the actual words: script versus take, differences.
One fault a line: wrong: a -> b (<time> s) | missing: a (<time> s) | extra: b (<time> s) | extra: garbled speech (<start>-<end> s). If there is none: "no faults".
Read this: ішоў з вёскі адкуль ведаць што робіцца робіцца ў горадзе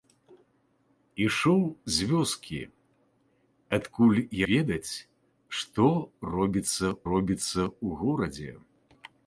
no faults